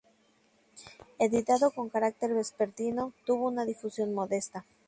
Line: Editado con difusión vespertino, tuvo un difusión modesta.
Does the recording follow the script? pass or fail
fail